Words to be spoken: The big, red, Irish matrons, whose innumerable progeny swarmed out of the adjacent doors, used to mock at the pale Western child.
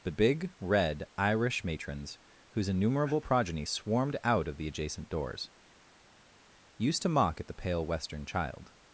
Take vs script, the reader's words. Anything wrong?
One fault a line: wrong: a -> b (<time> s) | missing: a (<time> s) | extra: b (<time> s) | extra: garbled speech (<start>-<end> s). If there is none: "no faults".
no faults